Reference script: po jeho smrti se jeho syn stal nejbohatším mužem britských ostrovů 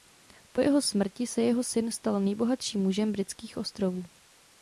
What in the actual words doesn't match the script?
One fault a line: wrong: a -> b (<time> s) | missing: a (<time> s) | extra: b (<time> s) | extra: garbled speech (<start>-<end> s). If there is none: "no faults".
no faults